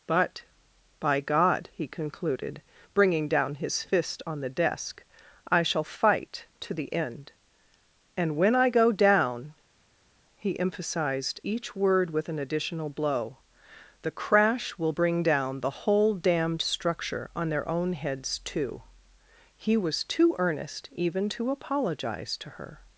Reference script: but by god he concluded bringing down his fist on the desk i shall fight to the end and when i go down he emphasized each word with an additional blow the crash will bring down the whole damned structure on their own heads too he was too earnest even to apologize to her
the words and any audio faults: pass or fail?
pass